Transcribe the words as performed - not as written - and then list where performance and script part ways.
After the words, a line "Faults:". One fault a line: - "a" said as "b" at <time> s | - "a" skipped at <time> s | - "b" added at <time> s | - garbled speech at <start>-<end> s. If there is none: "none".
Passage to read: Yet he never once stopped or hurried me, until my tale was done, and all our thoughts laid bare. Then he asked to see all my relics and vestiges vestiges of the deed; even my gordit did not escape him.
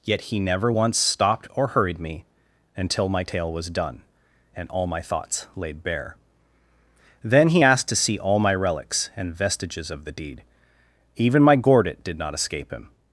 Yet he never once stopped or hurried me, until my tale was done, and all my thoughts laid bare. Then he asked to see all my relics and vestiges of the deed; even my gordit did not escape him.
Faults:
- "our" said as "my" at 4.9 s
- "vestiges" skipped at 9.9 s